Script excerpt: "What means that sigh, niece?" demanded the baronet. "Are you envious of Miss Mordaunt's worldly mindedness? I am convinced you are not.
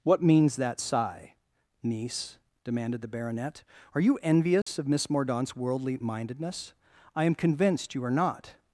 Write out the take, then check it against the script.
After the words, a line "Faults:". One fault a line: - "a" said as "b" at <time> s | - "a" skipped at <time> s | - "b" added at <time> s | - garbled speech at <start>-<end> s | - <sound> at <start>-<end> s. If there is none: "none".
"What means that sigh, niece?" demanded the baronet. "Are you envious of Miss Mordaunt's worldly mindedness? I am convinced you are not.
Faults:
- dropout at 4.6-4.7 s